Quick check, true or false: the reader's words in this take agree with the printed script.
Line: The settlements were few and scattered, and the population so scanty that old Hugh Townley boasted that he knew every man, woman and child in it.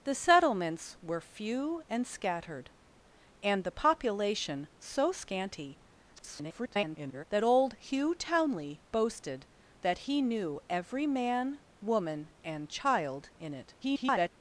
false